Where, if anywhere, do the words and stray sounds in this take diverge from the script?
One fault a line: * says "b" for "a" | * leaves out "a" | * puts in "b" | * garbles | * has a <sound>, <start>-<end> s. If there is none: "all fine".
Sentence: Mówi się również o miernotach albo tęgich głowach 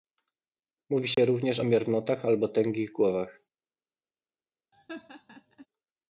* has a dropout, 1.1-1.2 s
* has a laugh, 4.7-5.7 s